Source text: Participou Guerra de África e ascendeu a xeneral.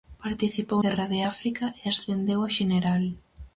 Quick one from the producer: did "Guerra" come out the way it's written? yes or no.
yes